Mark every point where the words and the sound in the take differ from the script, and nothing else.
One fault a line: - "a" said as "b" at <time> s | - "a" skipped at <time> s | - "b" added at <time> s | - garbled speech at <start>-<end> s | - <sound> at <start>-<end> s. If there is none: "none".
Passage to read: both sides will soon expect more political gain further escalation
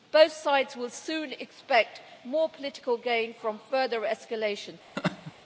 - "from" added at 3.4 s
- laugh at 5.0-5.3 s